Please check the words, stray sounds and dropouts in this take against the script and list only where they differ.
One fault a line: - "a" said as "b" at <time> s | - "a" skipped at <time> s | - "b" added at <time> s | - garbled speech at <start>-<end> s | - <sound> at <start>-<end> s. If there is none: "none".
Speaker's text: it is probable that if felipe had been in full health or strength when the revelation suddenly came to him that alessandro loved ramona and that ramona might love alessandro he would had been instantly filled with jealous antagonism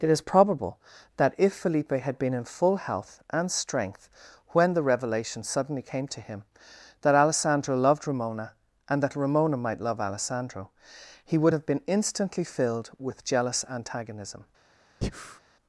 - "or" said as "and" at 3.3 s
- "had" said as "have" at 11.5 s
- breath at 15.0-15.4 s